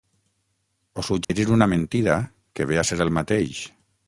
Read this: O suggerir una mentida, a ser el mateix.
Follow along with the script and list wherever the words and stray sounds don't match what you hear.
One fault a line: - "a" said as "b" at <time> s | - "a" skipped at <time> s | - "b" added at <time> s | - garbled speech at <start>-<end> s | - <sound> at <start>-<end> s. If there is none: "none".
- dropout at 1.2-1.3 s
- "que ve" added at 2.5 s